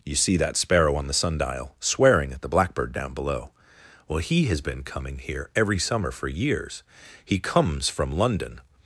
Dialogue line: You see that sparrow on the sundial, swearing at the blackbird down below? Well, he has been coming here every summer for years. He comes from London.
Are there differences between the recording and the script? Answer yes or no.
no